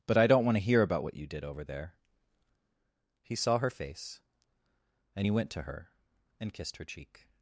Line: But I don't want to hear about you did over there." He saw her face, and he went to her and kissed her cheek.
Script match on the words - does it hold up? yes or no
no